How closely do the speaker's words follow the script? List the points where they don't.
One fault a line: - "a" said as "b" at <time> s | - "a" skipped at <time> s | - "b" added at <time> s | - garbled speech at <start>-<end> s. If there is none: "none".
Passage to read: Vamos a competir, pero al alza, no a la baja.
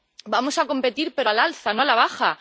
none